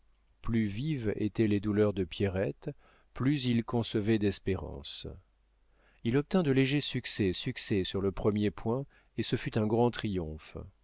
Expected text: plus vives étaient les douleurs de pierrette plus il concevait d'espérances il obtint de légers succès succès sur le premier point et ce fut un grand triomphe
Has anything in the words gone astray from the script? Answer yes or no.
no